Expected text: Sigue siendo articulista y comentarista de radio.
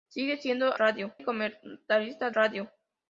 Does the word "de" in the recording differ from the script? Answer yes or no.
yes